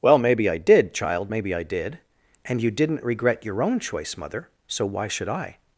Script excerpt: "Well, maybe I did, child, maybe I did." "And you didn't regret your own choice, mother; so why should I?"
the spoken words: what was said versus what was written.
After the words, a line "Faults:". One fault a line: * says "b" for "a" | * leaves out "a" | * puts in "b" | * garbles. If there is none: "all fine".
"Well, maybe I did, child, maybe I did." "And you didn't regret your own choice, mother; so why should I?"
Faults:
all fine